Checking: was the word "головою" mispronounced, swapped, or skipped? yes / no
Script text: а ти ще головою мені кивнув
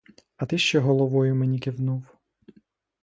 no